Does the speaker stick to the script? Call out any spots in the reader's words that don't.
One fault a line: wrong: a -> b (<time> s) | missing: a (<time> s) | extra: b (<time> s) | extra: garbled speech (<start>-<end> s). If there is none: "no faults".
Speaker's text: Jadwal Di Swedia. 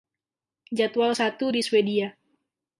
extra: Satu (1.1 s)